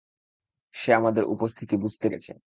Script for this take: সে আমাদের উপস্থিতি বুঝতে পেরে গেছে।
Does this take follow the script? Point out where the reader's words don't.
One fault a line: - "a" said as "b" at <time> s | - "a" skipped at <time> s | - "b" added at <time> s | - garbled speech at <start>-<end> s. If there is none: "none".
- "পেরে" skipped at 2.1 s